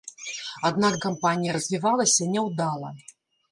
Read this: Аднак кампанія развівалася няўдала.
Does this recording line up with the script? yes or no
yes